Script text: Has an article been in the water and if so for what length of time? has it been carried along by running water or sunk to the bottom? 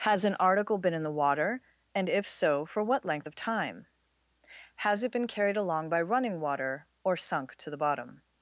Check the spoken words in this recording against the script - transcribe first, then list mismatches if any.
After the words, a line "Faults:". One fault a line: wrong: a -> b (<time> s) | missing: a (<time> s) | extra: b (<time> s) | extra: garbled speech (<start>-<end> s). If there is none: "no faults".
Has an article been in the water and if so for what length of time? has it been carried along by running water or sunk to the bottom?
Faults:
no faults